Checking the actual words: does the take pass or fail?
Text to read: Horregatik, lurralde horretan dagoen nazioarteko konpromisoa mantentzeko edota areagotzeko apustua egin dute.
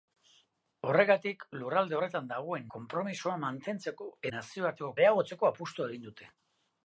fail